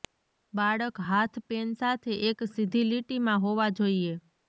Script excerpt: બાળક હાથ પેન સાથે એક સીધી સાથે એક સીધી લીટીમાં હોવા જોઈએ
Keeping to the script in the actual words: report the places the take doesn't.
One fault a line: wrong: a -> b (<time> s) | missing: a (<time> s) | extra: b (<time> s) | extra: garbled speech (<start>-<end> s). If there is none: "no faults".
missing: સાથે એક સીધી (2.9 s)